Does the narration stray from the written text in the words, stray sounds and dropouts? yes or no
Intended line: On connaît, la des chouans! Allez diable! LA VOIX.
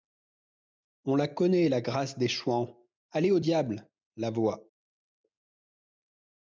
yes